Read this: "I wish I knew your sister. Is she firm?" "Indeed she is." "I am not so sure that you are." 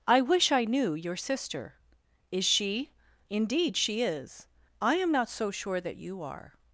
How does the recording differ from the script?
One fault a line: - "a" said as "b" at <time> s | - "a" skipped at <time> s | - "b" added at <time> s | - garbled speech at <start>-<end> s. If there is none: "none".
- "firm" skipped at 2.9 s